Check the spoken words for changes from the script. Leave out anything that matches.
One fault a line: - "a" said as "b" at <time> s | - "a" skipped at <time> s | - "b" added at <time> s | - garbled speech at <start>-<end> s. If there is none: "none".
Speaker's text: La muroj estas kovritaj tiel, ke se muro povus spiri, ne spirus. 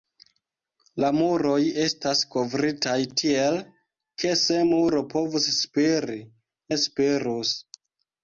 none